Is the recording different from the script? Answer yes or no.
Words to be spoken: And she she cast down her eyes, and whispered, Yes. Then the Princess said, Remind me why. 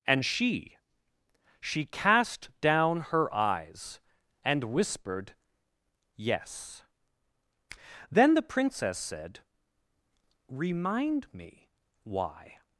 no